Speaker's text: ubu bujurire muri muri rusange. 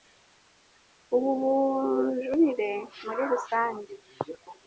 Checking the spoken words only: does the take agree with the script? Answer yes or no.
no